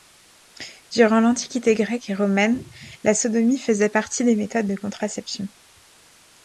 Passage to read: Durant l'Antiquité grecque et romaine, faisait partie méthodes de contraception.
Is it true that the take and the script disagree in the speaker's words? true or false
true